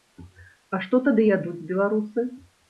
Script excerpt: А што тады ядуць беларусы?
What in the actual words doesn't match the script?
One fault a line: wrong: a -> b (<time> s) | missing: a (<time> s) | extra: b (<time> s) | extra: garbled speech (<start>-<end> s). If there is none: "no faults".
no faults